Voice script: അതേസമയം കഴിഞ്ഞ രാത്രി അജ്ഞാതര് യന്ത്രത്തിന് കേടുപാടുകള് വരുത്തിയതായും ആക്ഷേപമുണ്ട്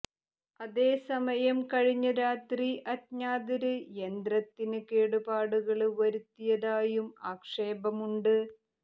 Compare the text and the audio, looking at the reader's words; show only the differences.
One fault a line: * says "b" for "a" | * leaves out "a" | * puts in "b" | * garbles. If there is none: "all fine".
all fine